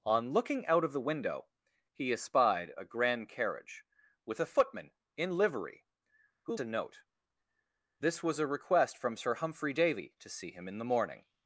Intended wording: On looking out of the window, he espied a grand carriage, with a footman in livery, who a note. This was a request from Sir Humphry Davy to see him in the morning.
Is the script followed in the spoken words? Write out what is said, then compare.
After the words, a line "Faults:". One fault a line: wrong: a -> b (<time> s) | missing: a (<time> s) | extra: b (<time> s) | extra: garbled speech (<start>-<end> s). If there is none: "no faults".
On looking out of the window, he espied a grand carriage, with a footman in livery, who a note. This was a request from Sir Humphry Davy to see him in the morning.
Faults:
no faults